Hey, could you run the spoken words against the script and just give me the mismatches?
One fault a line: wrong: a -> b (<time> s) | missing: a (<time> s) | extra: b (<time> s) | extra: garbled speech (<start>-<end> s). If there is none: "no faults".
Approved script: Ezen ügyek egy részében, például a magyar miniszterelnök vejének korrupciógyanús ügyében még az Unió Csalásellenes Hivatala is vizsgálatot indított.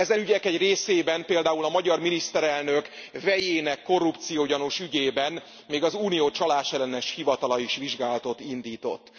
no faults